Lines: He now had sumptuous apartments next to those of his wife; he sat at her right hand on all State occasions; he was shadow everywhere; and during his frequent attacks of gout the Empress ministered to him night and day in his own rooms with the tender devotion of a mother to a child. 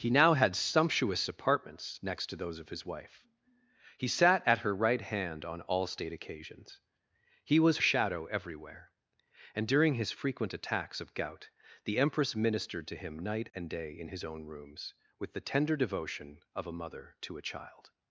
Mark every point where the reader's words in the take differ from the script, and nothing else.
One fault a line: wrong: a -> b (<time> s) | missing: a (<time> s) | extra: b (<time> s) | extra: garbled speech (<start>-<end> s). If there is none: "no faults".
no faults